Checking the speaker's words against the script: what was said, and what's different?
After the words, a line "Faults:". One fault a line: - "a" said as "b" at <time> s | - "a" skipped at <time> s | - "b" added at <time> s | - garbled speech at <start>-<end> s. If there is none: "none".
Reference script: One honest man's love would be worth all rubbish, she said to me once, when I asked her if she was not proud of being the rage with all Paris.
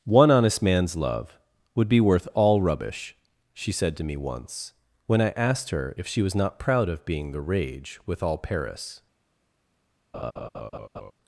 One honest man's love would be worth all rubbish, she said to me once, when I asked her if she was not proud of being the rage with all Paris.
Faults:
none